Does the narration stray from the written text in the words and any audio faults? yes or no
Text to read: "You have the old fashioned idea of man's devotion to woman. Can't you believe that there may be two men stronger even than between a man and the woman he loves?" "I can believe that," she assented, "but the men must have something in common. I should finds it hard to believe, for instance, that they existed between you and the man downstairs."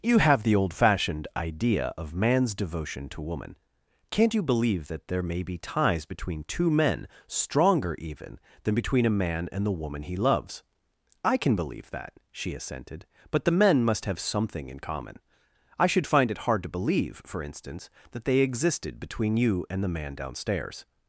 yes